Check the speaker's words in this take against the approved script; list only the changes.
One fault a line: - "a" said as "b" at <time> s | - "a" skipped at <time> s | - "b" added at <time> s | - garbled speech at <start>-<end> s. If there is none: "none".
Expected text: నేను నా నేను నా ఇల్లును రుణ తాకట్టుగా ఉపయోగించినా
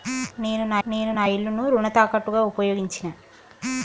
none